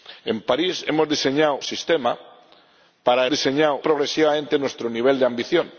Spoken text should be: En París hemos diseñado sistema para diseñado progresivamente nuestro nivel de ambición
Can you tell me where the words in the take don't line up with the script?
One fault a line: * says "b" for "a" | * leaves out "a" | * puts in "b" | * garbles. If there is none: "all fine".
all fine